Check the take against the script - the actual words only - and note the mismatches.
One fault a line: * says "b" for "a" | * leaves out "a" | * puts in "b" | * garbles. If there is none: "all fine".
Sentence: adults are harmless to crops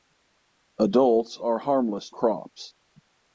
* leaves out "to"